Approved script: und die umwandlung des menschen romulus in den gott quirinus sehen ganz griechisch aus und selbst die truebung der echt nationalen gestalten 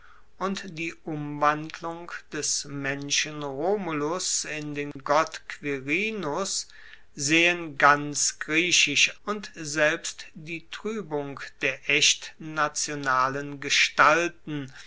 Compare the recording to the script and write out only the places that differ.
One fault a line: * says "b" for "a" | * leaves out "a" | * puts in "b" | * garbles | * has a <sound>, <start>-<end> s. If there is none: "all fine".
* has a dropout, 4.9-5.0 s
* leaves out "aus"